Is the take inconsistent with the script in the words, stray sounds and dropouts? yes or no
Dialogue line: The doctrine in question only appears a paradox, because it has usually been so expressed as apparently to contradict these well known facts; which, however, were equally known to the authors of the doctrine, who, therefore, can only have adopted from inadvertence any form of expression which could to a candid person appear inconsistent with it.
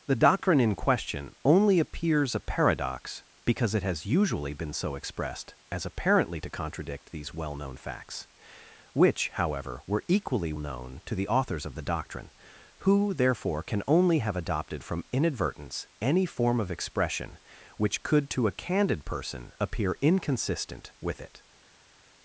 no